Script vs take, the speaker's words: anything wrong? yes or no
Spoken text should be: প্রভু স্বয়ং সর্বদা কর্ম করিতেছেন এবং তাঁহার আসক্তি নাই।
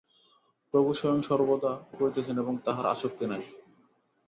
yes